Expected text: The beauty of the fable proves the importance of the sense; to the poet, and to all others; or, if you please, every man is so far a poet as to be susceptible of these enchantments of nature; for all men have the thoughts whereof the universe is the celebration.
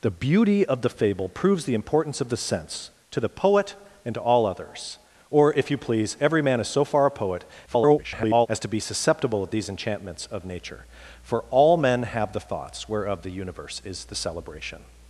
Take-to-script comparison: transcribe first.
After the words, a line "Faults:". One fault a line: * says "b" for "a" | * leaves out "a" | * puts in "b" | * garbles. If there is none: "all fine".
The beauty of the fable proves the importance of the sense; to the poet, and to all others; or, if you please, every man is so far a poet [garbled] as to be susceptible of these enchantments of nature; for all men have the thoughts whereof the universe is the celebration.
Faults:
* garbles